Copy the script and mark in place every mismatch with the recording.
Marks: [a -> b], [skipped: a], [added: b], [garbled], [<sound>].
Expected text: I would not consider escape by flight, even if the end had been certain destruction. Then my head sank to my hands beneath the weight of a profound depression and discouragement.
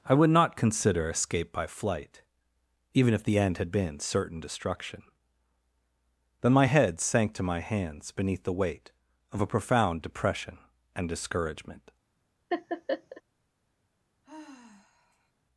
I would not consider escape by flight, even if the end had been certain destruction. Then my head sank to my hands beneath the weight of a profound depression and discouragement. [laugh] [sigh]